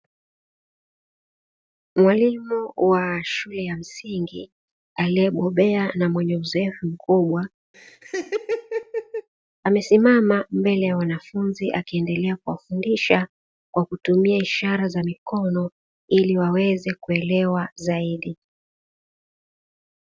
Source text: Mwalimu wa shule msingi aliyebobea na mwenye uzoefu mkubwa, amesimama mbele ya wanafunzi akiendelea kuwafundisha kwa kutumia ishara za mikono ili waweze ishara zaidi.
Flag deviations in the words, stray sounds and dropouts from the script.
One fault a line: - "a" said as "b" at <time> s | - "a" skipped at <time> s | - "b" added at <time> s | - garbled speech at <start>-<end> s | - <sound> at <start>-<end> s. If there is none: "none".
- "ya" added at 3.6 s
- laugh at 7.7-9.3 s
- "ishara" said as "kuelewa" at 16.9 s